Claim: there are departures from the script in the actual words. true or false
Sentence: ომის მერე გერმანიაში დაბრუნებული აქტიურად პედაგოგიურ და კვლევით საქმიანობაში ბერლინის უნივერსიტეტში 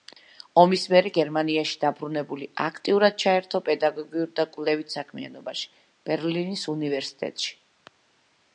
true